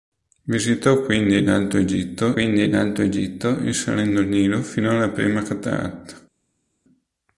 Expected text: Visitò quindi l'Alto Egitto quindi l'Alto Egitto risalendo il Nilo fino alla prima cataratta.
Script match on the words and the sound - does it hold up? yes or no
yes